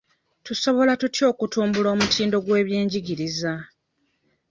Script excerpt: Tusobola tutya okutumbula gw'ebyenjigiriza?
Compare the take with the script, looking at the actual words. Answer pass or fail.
fail